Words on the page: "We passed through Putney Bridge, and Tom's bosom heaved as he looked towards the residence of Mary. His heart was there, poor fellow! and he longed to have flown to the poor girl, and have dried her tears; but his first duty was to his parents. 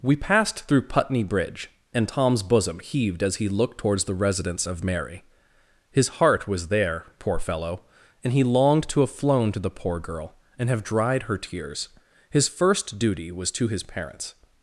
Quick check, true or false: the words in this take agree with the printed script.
false